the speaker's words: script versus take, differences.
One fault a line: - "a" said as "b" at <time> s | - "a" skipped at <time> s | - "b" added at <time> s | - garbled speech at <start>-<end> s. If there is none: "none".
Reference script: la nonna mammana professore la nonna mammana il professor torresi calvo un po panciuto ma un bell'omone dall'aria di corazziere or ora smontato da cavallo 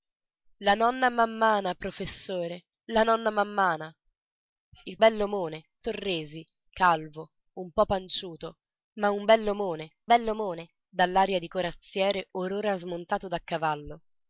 - "professor" said as "bell'omone" at 5.0 s
- "bell'omone" added at 10.1 s